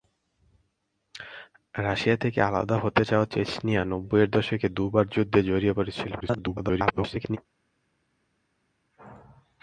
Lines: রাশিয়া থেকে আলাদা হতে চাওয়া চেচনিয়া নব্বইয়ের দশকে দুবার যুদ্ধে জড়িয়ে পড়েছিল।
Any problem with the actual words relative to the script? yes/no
yes